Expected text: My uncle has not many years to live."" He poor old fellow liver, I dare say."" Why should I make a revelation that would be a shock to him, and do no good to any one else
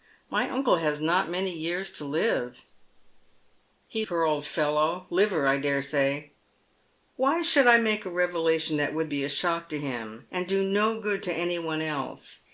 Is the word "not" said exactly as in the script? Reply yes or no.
yes